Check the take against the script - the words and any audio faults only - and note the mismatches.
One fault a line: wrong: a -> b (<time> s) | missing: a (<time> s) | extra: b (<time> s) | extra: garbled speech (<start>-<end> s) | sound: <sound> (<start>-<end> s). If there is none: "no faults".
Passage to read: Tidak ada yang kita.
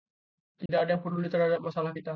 sound: dropout (0.7-0.7 s)
extra: peduli terhadap masalah (1.0 s)